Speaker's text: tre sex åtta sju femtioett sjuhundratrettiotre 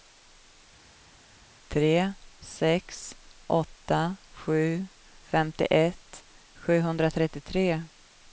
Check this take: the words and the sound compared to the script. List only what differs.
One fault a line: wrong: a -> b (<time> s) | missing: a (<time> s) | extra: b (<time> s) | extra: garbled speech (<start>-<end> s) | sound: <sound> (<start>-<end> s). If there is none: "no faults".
no faults